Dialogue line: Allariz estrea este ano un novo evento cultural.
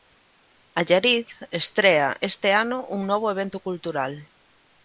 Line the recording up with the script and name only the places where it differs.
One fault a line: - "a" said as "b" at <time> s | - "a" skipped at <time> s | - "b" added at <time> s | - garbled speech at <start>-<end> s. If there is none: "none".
none